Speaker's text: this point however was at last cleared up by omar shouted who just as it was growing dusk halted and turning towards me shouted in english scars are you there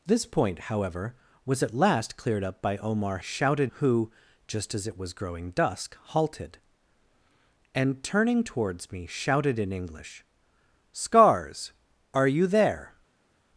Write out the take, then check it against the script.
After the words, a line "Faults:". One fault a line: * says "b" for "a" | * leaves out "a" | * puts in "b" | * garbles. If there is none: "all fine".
this point however was at last cleared up by omar shouted who just as it was growing dusk halted and turning towards me shouted in english scars are you there
Faults:
all fine